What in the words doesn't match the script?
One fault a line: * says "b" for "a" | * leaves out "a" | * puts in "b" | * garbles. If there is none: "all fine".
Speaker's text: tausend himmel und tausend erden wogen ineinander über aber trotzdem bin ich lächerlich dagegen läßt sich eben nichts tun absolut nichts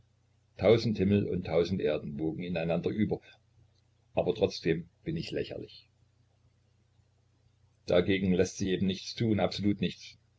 all fine